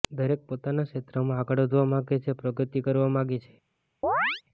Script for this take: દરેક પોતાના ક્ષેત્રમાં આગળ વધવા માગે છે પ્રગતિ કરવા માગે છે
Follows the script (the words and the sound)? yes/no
no